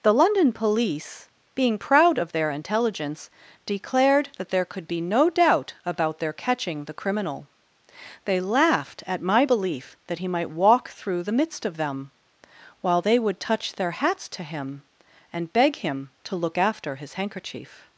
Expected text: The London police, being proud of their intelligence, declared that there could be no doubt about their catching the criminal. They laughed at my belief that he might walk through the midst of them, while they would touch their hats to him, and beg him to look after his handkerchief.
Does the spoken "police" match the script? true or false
true